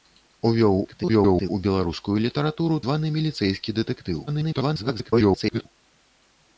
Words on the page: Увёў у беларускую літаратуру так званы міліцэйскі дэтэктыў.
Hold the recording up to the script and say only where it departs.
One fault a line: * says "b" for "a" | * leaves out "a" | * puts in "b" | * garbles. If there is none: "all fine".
* garbles
* leaves out "так"
* garbles